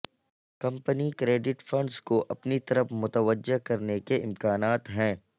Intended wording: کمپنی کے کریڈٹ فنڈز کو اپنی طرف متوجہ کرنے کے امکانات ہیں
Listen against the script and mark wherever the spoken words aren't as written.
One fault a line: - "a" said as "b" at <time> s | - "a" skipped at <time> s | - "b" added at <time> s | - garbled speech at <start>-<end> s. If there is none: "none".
- "کے" skipped at 1.1 s